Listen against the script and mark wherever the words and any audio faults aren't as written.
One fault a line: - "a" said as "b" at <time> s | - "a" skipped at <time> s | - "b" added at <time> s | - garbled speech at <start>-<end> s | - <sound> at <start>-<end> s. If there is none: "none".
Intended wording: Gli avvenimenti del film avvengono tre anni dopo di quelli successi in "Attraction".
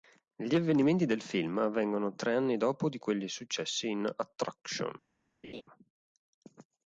- laugh at 5.4-5.6 s